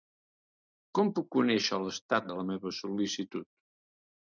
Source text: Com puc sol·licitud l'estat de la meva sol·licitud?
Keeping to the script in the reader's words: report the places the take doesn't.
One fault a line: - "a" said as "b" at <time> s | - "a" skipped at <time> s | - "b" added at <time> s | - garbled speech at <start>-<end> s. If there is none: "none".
- "sol·licitud" said as "conèixer" at 1.4 s